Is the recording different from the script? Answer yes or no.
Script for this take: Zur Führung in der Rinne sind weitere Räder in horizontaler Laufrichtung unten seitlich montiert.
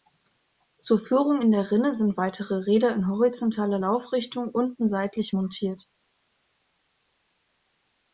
no